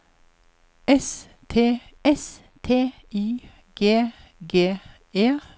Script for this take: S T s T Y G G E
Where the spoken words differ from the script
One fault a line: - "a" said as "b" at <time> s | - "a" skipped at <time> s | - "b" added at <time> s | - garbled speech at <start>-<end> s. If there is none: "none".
none